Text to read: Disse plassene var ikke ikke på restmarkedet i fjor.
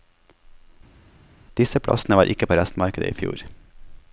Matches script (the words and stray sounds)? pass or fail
fail